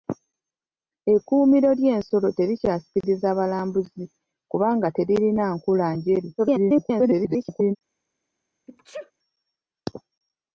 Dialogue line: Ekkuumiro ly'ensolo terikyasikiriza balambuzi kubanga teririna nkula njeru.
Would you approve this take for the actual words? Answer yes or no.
no